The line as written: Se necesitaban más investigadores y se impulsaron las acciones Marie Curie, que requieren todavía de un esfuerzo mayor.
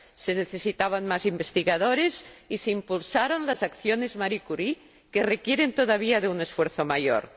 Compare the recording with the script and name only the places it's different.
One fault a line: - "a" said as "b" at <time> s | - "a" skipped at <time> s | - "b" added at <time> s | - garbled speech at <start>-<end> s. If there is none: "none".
none